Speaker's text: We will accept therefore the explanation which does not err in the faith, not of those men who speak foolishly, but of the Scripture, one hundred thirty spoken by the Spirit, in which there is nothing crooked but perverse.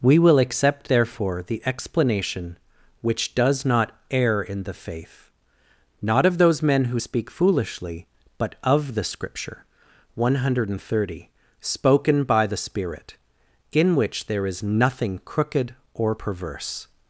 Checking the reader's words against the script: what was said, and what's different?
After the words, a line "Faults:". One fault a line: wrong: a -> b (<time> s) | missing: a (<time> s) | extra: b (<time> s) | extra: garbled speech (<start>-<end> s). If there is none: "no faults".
We will accept therefore the explanation which does not err in the faith, not of those men who speak foolishly, but of the Scripture, one hundred thirty spoken by the Spirit, in which there is nothing crooked or perverse.
Faults:
wrong: but -> or (15.9 s)